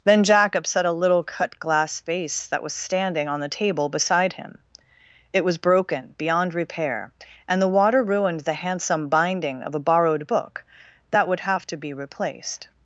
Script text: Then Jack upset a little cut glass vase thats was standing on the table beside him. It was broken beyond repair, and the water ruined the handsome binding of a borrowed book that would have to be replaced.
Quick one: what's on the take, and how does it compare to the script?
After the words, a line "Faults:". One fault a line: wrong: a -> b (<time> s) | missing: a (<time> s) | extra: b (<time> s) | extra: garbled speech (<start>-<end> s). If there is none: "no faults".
Then Jack upset a little cut glass vase that was standing on the table beside him. It was broken beyond repair, and the water ruined the handsome binding of a borrowed book that would have to be replaced.
Faults:
wrong: thats -> that (2.5 s)